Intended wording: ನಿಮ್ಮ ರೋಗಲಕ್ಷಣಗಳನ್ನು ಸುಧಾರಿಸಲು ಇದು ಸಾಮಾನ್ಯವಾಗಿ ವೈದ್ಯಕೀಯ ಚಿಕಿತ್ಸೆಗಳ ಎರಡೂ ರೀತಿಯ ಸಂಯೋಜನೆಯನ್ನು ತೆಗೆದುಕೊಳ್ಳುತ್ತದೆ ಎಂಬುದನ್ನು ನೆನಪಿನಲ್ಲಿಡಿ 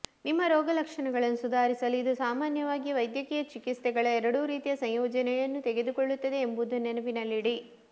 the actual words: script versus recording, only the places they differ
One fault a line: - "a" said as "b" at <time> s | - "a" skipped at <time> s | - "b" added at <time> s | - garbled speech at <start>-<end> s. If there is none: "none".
none